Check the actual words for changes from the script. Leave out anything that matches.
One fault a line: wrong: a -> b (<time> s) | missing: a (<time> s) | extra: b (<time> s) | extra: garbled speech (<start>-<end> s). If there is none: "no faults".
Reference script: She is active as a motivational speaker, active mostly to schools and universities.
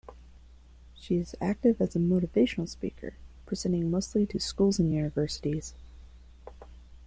wrong: active -> presenting (3.5 s)